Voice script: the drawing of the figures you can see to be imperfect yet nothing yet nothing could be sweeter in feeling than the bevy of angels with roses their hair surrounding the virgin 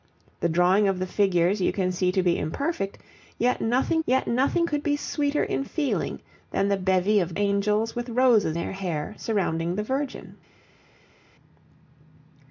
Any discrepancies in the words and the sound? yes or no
no